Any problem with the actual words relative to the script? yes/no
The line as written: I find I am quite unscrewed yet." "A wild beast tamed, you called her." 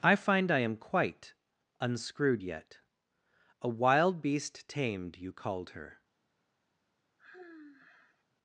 no